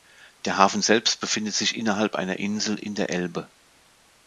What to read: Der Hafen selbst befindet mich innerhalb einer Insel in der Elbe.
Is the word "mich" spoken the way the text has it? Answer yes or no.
no